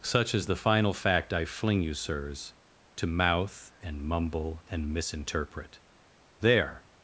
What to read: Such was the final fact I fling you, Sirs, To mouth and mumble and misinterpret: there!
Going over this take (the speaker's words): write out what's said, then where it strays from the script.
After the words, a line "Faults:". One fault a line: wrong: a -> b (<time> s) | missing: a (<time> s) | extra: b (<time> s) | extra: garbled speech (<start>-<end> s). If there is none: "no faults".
Such is the final fact I fling you, Sirs, To mouth and mumble and misinterpret: there!
Faults:
wrong: was -> is (0.3 s)